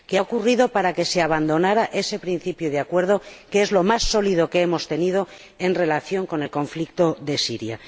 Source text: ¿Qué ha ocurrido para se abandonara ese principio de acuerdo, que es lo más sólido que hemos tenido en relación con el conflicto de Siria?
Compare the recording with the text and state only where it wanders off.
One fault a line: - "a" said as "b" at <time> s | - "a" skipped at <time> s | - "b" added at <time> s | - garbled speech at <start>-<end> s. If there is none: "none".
- "que" added at 0.9 s